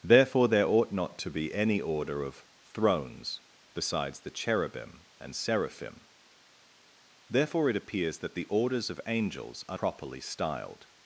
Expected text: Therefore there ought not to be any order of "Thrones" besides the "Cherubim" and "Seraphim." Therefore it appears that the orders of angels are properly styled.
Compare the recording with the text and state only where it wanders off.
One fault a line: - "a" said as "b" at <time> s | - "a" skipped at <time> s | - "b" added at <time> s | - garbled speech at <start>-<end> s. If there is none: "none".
none